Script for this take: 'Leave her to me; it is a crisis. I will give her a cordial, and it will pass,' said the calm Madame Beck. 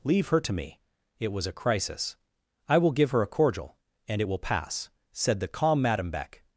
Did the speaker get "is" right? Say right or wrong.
wrong